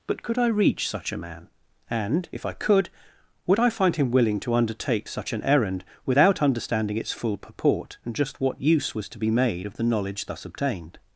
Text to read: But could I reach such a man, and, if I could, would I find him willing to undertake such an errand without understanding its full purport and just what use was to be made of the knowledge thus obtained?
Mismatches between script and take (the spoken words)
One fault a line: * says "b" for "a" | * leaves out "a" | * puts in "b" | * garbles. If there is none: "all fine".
all fine